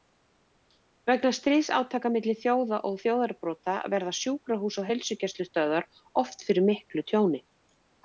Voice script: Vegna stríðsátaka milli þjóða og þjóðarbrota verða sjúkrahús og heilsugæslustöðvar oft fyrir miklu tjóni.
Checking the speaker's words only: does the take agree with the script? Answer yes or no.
yes